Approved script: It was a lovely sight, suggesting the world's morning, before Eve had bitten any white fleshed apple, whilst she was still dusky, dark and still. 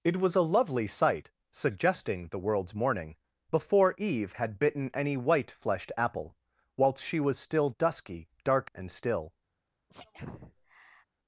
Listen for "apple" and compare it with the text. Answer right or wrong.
right